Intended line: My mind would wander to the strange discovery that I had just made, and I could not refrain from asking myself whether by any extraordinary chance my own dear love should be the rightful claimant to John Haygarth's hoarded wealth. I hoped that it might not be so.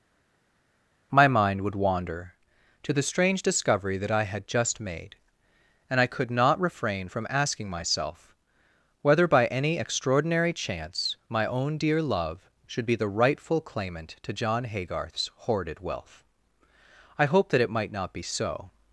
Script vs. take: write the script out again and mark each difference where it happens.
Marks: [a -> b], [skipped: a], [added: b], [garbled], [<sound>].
My mind would wander to the strange discovery that I had just made, and I could not refrain from asking myself whether by any extraordinary chance my own dear love should be the rightful claimant to John Haygarth's hoarded wealth. I hoped that it might not be so.